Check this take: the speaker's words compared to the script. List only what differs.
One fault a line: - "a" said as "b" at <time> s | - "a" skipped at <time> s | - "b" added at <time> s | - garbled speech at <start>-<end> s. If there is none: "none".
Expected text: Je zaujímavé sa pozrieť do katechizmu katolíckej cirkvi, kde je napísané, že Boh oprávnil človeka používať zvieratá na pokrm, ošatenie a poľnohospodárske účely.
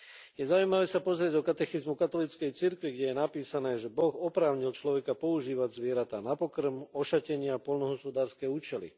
none